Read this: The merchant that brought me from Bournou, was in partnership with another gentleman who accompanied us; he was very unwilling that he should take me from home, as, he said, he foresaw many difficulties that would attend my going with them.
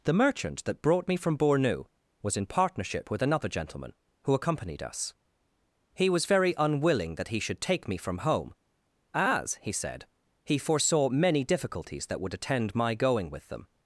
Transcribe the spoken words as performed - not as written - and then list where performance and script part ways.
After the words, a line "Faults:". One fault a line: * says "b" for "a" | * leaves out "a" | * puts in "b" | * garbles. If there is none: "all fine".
The merchant that brought me from Bournou, was in partnership with another gentleman who accompanied us; he was very unwilling that he should take me from home, as, he said, he foresaw many difficulties that would attend my going with them.
Faults:
all fine